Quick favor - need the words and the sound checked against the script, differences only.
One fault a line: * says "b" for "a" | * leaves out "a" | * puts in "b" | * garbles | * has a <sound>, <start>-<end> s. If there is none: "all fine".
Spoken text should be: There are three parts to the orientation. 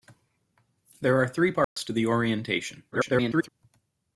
* has a dropout, 1.6-1.8 s
* garbles